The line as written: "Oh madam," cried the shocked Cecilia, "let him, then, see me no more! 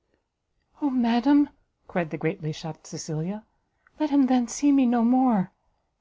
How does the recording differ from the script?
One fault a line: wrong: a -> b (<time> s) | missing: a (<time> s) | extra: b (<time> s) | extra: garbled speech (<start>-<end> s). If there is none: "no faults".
extra: greatly (2.1 s)